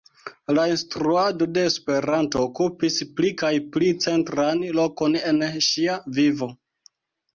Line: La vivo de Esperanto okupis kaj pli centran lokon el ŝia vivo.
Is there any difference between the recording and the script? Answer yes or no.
yes